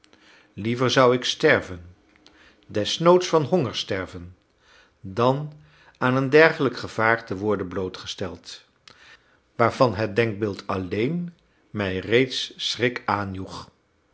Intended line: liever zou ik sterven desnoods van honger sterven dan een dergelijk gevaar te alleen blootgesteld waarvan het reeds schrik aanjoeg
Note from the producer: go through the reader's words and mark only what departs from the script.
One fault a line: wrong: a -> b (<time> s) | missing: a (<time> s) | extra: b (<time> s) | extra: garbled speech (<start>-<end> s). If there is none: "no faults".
extra: aan (6.0 s)
wrong: alleen -> worden (7.4 s)
extra: denkbeeld alleen mij (10.2 s)